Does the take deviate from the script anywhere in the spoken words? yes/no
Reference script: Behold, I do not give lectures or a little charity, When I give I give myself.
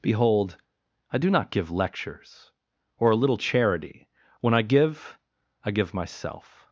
no